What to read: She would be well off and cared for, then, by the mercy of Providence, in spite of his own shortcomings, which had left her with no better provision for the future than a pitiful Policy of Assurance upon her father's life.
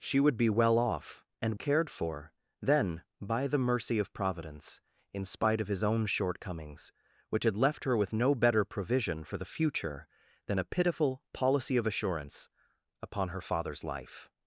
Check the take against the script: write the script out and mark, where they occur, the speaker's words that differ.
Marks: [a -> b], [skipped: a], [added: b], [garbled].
She would be well off and cared for, then, by the mercy of Providence, in spite of his own shortcomings, which had left her with no better provision for the future than a pitiful Policy of Assurance upon her father's life.